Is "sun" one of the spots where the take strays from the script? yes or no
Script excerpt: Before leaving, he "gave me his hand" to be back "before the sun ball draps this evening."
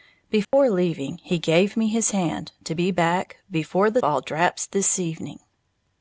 yes